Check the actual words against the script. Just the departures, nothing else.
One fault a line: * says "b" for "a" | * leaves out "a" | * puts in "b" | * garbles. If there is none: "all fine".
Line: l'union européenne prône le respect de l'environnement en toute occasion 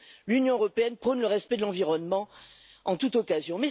all fine